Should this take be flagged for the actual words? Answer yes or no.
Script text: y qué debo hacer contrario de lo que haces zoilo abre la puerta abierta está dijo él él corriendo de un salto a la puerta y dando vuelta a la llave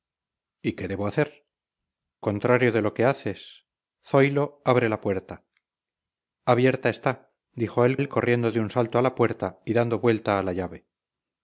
no